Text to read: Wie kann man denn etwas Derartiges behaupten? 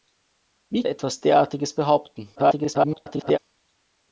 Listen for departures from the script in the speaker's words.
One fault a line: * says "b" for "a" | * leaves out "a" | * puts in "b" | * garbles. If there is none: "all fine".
* leaves out "kann man denn"
* garbles